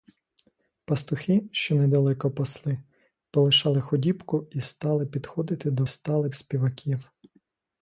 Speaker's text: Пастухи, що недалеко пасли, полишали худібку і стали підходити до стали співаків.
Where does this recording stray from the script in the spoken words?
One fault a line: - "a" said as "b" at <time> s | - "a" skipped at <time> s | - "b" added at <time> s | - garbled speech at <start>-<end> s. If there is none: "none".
none